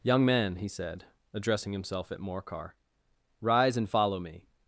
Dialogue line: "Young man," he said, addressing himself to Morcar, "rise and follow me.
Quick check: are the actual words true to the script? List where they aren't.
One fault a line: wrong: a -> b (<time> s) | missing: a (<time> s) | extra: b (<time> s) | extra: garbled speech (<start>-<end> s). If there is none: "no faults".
wrong: to -> at (2.1 s)